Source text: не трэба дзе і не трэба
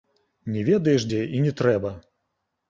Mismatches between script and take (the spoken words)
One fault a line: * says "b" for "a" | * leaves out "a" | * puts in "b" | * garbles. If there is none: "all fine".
* says "ведаеш" for "трэба"